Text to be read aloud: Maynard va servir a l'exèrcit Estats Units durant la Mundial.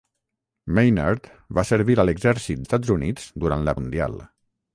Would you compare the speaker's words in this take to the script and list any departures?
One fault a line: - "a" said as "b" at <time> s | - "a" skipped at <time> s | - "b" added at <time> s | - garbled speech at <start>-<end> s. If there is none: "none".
none